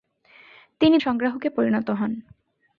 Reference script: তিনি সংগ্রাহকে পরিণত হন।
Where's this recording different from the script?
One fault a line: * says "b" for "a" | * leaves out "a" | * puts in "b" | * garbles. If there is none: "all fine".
all fine